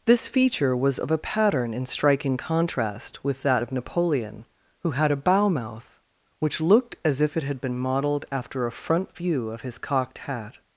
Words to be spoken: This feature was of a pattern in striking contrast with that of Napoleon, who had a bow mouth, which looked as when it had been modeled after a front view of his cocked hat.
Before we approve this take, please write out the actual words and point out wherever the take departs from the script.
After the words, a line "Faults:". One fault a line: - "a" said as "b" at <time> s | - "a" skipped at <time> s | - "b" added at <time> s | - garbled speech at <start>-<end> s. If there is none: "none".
This feature was of a pattern in striking contrast with that of Napoleon, who had a bow mouth, which looked as if it had been modeled after a front view of his cocked hat.
Faults:
- "when" said as "if" at 7.2 s